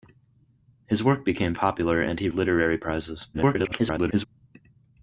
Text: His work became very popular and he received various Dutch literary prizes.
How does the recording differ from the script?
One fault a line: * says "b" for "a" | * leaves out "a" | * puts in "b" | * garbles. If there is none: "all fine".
* leaves out "very"
* leaves out "received various Dutch"
* garbles